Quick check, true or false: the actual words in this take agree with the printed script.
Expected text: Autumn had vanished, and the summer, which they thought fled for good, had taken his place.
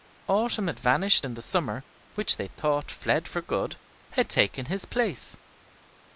true